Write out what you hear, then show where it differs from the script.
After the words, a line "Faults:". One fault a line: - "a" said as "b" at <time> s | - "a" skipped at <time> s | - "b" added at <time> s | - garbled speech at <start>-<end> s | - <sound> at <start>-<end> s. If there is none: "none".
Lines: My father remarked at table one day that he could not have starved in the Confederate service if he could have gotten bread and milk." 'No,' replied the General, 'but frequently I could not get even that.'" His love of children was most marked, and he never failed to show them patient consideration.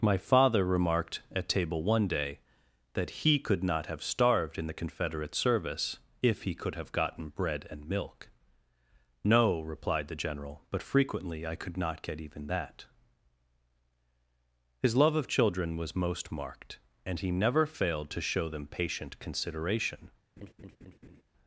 My father remarked at table one day that he could not have starved in the Confederate service if he could have gotten bread and milk." 'No,' replied the General, 'but frequently I could not get even that.'" His love of children was most marked, and he never failed to show them patient consideration.
Faults:
- laugh at 20.4-21.2 s